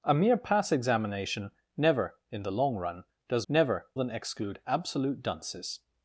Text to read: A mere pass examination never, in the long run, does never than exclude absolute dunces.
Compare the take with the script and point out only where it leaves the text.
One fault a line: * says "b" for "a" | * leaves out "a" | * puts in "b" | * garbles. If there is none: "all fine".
all fine